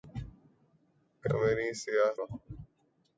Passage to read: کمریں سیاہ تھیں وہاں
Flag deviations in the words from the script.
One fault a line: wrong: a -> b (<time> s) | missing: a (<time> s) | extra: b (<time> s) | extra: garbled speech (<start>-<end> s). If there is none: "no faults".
missing: تھیں (2.1 s)